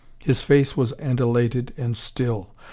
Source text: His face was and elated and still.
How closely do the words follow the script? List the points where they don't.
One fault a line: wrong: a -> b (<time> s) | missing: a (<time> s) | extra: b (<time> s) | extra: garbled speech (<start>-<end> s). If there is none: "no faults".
no faults